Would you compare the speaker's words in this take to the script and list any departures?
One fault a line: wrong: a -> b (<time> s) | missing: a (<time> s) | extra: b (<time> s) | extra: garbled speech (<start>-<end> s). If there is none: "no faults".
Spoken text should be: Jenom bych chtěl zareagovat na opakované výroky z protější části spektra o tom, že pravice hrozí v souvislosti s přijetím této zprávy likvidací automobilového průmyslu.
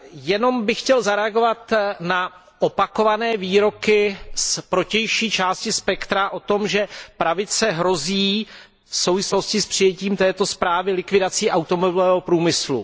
no faults